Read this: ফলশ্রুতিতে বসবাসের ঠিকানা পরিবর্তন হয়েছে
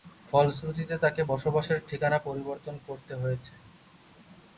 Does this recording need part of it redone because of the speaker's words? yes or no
yes